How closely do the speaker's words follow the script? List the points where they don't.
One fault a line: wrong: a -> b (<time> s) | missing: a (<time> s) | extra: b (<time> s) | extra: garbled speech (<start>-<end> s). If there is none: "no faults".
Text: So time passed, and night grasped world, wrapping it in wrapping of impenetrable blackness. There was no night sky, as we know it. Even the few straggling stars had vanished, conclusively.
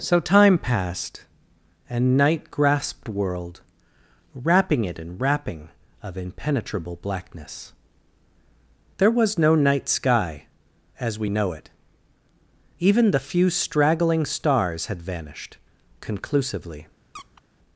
no faults